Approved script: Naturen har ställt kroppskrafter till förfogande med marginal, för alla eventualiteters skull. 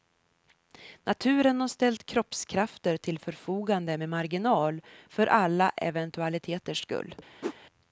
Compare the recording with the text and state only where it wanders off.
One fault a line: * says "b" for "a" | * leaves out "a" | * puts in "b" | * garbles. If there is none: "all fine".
all fine